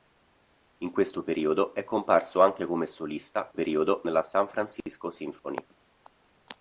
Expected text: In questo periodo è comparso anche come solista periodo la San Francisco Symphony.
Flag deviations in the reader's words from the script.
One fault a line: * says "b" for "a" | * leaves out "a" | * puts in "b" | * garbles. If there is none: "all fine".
all fine